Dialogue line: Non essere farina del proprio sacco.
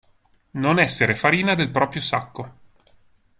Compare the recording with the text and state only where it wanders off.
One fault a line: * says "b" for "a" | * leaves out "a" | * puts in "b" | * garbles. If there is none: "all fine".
all fine